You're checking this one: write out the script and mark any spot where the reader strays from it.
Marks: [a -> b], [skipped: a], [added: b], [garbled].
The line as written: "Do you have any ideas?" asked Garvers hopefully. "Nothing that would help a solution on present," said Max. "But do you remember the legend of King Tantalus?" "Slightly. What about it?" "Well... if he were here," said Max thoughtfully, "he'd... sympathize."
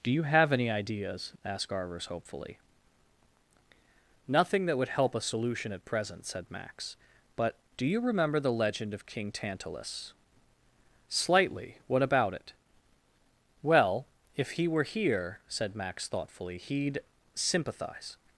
"Do you have any ideas?" asked Garvers hopefully. "Nothing that would help a solution [on -> at] present," said Max. "But do you remember the legend of King Tantalus?" "Slightly. What about it?" "Well... if he were here," said Max thoughtfully, "he'd... sympathize."